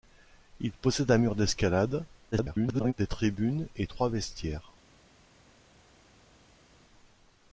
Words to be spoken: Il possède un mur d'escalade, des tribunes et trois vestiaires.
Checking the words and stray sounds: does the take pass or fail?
fail